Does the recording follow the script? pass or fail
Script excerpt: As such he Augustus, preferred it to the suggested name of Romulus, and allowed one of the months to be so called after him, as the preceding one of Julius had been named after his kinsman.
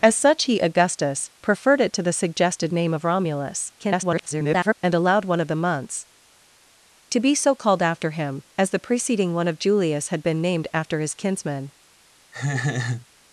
fail